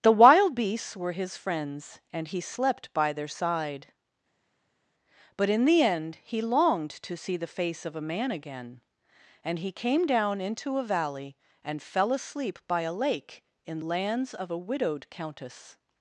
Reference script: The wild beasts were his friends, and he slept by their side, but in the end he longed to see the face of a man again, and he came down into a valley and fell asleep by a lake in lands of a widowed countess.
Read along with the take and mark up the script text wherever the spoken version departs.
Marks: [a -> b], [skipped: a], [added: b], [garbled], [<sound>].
The wild beasts were his friends, and he slept by their side, but in the end he longed to see the face of a man again, and he came down into a valley and fell asleep by a lake in lands of a widowed countess.